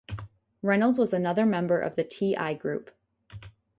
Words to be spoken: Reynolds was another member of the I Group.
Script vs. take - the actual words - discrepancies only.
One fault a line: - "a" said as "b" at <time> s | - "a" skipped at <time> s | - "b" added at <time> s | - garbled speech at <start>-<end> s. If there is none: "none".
- "T" added at 2.0 s